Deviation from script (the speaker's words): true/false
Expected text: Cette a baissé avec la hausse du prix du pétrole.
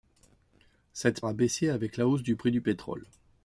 false